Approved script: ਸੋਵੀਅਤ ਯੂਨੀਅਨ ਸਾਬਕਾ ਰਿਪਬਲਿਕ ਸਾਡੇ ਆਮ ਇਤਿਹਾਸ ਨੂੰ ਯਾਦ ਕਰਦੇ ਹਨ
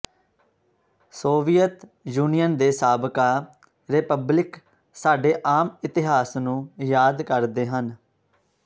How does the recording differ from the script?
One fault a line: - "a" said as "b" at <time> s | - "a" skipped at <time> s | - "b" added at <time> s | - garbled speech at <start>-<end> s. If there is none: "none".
- "ਦੇ" added at 2.6 s